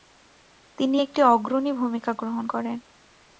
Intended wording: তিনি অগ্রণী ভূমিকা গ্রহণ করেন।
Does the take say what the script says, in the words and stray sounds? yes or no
no